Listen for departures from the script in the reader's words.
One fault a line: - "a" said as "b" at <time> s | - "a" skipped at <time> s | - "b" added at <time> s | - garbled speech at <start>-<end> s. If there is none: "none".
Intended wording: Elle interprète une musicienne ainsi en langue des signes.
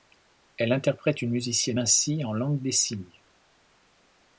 none